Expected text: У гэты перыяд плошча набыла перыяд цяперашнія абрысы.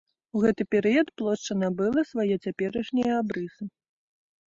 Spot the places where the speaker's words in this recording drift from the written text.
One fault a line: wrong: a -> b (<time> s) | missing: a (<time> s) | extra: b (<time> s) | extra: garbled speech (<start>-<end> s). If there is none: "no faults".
wrong: перыяд -> свае (2.1 s)